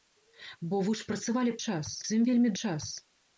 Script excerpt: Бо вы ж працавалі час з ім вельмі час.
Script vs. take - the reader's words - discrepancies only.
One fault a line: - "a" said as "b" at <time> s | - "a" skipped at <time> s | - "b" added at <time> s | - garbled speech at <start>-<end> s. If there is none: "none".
none